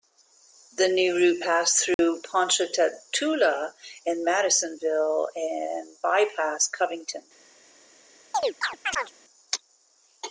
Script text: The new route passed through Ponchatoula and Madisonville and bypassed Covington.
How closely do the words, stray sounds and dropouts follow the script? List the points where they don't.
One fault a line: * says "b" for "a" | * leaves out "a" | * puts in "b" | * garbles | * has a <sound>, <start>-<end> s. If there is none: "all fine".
* has a dropout, 1.9-2.0 s
* has a chirp, 8.3-9.1 s